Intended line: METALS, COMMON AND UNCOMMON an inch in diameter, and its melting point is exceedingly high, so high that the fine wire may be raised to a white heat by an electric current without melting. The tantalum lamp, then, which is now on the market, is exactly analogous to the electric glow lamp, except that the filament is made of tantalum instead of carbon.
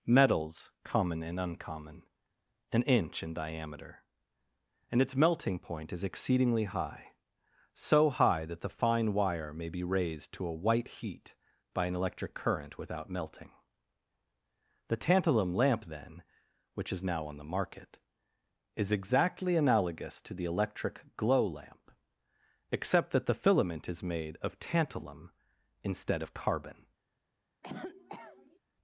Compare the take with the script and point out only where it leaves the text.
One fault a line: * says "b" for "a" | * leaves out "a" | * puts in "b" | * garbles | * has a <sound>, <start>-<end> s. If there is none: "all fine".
* has a cough, 27.6-28.6 s